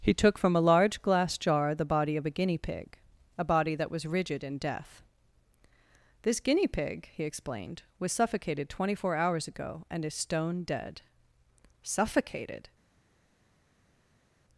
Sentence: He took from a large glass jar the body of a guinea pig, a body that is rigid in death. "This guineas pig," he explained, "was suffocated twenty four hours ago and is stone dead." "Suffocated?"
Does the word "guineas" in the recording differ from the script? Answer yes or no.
yes